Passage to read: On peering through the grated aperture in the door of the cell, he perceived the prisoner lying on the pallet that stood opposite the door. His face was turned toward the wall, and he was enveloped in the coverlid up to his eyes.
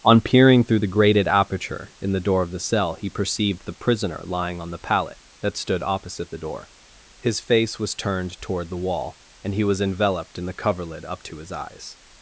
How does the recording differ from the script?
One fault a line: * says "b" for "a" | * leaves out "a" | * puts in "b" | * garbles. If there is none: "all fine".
all fine